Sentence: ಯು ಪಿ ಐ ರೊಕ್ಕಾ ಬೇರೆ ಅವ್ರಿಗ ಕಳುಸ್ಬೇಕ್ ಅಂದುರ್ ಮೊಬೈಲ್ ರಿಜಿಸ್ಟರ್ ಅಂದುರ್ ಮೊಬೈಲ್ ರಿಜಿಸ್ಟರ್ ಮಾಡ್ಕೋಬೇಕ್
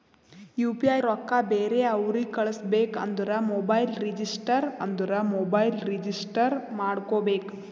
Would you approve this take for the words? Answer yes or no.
yes